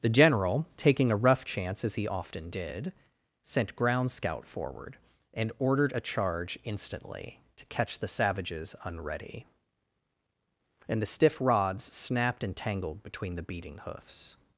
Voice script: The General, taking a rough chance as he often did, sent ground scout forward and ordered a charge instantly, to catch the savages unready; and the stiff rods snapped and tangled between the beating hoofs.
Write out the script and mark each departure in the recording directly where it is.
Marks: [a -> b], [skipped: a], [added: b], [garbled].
The General, taking a rough chance as he often did, sent ground scout forward and ordered a charge instantly, to catch the savages unready; and the stiff rods snapped and tangled between the beating hoofs.